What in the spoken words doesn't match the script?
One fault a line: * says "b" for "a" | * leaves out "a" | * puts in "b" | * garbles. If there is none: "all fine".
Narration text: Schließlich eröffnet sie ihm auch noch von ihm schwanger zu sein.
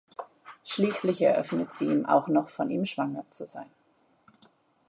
all fine